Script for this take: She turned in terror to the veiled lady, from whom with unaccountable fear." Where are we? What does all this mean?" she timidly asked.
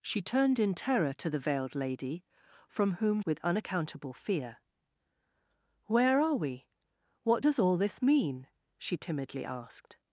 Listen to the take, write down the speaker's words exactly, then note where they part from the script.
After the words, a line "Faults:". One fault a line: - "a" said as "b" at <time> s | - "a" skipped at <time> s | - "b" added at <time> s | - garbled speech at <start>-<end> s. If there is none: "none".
She turned in terror to the veiled lady, from whom with unaccountable fear." Where are we? What does all this mean?" she timidly asked.
Faults:
none